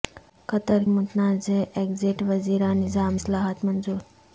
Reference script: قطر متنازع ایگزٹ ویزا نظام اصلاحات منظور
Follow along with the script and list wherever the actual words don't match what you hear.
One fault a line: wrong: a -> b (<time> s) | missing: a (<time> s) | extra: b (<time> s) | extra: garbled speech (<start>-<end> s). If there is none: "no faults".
no faults